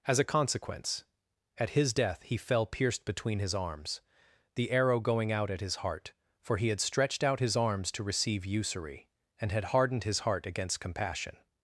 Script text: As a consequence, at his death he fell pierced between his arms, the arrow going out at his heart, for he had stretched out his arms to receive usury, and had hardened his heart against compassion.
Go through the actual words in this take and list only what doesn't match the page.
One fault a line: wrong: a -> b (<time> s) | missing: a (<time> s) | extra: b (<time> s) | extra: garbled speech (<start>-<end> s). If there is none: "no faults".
no faults